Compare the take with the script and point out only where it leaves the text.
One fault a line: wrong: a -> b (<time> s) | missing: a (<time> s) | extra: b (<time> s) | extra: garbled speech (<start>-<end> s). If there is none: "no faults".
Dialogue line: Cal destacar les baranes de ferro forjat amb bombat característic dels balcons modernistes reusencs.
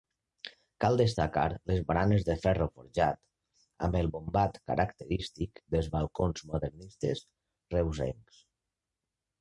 extra: el (4.0 s)